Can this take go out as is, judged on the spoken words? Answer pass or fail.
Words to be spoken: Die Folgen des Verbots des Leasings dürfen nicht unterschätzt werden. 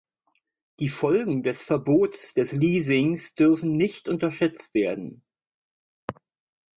pass